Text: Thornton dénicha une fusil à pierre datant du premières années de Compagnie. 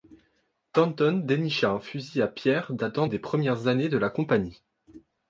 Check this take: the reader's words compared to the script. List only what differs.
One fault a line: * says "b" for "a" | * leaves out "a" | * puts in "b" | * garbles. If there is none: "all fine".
* says "un" for "une"
* says "des" for "du"
* puts in "la"